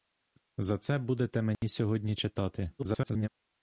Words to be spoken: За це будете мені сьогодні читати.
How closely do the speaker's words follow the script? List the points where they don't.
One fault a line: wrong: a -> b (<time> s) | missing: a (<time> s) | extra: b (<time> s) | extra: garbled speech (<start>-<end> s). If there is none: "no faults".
extra: garbled speech (2.8-3.3 s)